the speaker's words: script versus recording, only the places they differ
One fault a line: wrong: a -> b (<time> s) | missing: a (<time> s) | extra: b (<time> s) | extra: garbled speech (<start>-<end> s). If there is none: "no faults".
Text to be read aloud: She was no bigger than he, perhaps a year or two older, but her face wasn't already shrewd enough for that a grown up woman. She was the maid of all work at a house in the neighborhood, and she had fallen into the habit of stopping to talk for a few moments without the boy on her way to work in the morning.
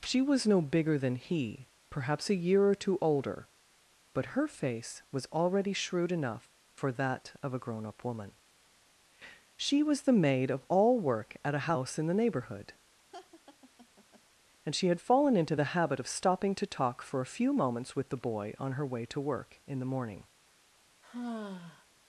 wrong: wasn't -> was (5.1 s)
extra: of (7.4 s)
wrong: without -> with (17.9 s)